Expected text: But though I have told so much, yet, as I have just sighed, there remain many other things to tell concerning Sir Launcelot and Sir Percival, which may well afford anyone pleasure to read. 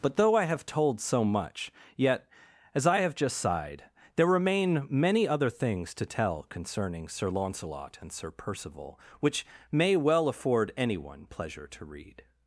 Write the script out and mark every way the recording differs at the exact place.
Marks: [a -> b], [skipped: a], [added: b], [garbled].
But though I have told so much, yet, as I have just sighed, there remain many other things to tell concerning Sir Launcelot and Sir Percival, which may well afford anyone pleasure to read.